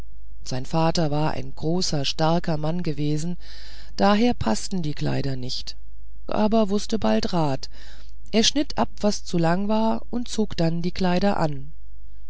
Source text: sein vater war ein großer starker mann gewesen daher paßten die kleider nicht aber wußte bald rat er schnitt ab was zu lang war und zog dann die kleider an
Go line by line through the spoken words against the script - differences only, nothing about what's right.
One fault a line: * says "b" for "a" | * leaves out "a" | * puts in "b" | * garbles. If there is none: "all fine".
all fine